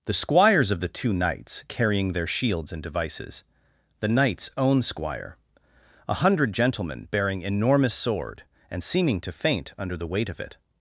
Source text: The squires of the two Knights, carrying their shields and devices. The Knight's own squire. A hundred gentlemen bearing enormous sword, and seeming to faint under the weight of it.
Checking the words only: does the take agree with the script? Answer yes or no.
yes